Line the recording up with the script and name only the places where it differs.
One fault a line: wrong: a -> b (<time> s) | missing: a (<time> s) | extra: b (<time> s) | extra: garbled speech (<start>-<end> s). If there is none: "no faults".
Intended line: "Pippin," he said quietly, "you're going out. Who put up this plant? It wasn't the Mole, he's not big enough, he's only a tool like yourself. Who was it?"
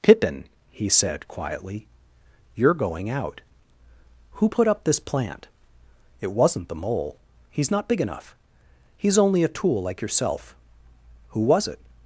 no faults